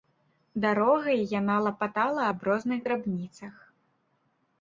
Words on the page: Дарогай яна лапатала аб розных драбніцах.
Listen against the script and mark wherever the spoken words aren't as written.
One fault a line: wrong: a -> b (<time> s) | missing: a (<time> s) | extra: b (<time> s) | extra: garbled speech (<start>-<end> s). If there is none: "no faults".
no faults